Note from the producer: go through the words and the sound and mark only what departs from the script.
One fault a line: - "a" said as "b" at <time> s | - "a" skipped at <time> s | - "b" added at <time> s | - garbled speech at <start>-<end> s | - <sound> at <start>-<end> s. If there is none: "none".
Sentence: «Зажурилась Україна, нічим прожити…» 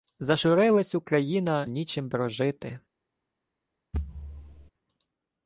- thud at 3.9-4.7 s